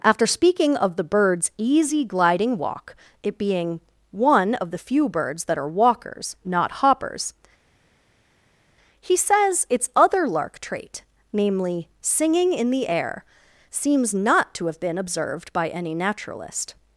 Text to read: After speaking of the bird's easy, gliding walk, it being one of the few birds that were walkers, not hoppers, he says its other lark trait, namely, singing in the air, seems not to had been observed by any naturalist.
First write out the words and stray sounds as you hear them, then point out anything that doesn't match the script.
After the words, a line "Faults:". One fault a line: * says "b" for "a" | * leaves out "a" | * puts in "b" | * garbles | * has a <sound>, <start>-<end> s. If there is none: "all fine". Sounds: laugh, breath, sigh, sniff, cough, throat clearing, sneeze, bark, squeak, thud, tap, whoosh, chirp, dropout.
After speaking of the bird's easy, gliding walk, it being one of the few birds that are walkers, not hoppers, he says its other lark trait, namely, singing in the air, seems not to have been observed by any naturalist.
Faults:
* says "are" for "were"
* says "have" for "had"